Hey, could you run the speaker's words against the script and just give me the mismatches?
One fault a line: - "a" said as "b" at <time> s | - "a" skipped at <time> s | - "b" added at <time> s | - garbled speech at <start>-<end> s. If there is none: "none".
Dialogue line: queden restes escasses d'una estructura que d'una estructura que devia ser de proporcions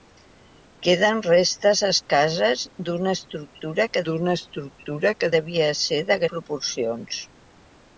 none